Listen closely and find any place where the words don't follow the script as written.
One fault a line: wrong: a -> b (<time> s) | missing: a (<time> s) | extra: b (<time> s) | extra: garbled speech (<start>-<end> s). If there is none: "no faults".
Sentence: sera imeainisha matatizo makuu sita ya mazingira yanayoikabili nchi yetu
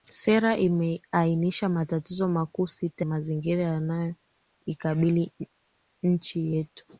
missing: ya (3.0 s)